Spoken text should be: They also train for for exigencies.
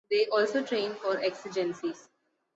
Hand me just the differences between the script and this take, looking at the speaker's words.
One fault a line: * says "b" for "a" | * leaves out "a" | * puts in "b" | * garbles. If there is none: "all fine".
* leaves out "for"